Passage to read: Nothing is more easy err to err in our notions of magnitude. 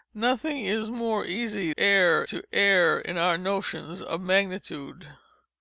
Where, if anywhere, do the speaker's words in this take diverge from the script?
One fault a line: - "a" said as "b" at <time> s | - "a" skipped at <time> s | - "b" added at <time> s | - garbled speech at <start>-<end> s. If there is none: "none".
none